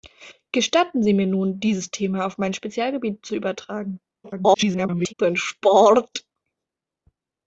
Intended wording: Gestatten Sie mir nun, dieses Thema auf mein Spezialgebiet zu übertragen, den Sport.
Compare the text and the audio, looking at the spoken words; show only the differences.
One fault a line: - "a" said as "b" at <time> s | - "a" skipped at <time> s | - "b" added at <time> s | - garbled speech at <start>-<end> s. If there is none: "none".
- garbled speech at 4.2-5.1 s